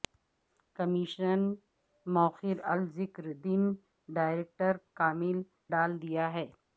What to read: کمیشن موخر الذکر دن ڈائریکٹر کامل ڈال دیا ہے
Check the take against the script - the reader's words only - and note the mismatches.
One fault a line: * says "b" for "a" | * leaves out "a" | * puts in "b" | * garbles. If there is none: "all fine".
all fine